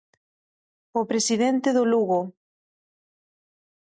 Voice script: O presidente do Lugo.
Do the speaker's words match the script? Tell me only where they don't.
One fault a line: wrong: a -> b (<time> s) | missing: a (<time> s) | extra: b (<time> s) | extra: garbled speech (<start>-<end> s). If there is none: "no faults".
no faults